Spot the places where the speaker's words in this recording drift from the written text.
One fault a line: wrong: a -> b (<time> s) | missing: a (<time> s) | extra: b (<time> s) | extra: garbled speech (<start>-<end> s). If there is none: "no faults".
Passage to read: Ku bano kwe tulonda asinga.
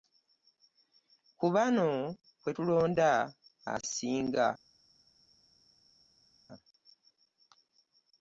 no faults